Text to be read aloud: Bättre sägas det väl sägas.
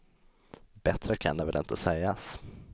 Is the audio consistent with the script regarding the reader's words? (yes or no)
no